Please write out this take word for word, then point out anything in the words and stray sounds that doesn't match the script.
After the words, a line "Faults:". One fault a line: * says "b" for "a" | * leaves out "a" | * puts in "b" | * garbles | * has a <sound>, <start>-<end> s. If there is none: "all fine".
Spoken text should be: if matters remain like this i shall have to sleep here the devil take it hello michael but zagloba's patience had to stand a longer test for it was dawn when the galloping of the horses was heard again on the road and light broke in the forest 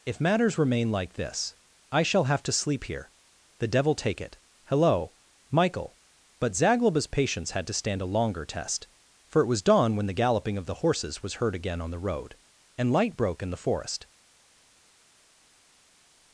if matters remain like this i shall have to sleep here the devil take it hello michael but zagloba's patience had to stand a longer test for it was dawn when the galloping of the horses was heard again on the road and light broke in the forest
Faults:
all fine